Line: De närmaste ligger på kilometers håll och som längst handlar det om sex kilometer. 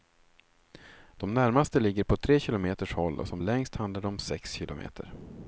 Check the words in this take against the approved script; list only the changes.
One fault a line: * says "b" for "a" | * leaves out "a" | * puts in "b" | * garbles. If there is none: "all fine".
* puts in "tre"